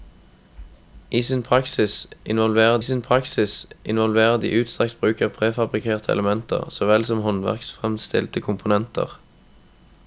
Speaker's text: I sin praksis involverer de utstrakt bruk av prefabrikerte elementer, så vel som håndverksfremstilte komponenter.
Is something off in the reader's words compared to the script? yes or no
yes